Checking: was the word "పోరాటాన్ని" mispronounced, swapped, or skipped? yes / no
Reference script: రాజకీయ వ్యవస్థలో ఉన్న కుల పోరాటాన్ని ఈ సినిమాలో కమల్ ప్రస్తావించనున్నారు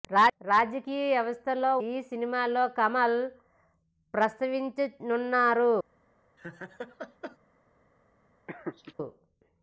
yes